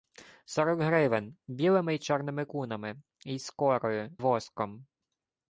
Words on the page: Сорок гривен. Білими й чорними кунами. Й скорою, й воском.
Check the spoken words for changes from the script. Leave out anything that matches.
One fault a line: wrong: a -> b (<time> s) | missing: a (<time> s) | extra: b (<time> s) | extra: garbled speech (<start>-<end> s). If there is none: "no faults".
missing: й (4.2 s)